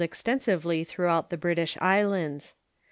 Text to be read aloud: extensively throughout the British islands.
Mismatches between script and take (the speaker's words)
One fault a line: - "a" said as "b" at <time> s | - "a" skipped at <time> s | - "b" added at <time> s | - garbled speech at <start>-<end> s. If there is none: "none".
none